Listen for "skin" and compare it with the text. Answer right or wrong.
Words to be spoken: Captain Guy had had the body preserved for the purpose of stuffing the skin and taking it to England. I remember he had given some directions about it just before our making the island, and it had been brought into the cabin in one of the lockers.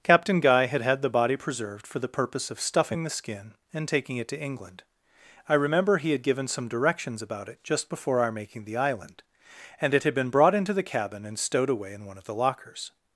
right